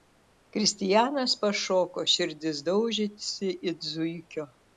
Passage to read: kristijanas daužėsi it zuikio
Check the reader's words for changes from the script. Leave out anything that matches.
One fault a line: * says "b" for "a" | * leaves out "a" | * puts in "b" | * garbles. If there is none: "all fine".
* puts in "pašoko širdis"